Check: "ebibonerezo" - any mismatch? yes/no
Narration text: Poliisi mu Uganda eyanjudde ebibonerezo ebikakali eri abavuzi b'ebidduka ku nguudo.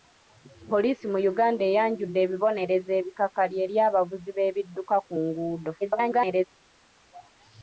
no